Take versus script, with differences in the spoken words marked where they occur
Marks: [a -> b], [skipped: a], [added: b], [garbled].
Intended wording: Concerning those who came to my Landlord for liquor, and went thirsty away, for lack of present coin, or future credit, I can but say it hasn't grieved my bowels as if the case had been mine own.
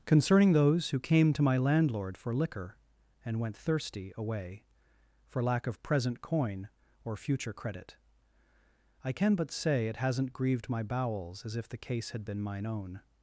Concerning those who came to my Landlord for liquor, and went thirsty away, for lack of present coin, or future credit, I can but say it hasn't grieved my bowels as if the case had been mine own.